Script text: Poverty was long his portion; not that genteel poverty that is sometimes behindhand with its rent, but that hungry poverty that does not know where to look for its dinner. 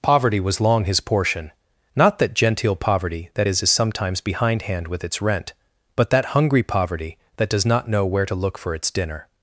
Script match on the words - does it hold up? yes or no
no